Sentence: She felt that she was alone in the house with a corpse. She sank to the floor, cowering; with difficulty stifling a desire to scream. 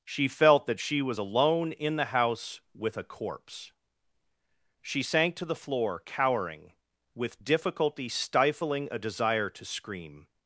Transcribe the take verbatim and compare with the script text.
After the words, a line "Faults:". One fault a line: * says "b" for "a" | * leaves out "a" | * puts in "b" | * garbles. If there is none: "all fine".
She felt that she was alone in the house with a corpse. She sank to the floor, cowering; with difficulty stifling a desire to scream.
Faults:
all fine